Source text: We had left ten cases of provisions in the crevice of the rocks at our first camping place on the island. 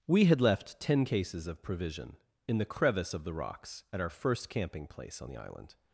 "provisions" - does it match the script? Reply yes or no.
no